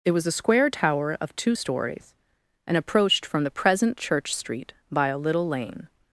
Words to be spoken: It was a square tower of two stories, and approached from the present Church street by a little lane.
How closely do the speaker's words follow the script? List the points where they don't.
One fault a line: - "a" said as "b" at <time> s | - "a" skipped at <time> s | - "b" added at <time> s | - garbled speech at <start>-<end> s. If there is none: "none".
none